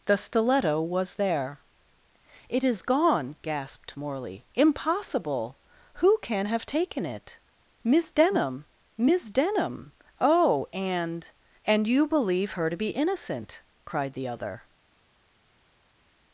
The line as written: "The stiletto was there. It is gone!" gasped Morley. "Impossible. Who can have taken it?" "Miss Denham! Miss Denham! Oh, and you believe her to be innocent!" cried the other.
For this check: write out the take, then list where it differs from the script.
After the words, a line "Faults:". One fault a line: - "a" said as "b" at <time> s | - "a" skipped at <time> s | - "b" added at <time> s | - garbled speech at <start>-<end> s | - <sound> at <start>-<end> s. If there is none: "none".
"The stiletto was there. It is gone!" gasped Morley. "Impossible. Who can have taken it?" "Miss Denham! Miss Denham! Oh, and and you believe her to be innocent!" cried the other.
Faults:
- "and" added at 11.6 s